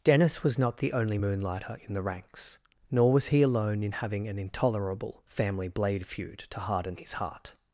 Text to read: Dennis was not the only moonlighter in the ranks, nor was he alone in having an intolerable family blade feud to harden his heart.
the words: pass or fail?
pass